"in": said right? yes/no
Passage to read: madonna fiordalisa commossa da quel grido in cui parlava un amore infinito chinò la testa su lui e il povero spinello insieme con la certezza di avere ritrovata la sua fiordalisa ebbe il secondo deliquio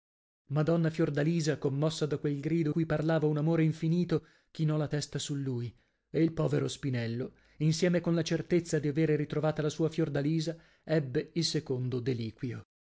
no